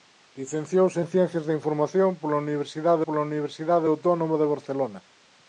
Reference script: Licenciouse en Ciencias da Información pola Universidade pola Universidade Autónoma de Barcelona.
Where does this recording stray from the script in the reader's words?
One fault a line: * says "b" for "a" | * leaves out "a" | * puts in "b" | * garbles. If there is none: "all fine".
all fine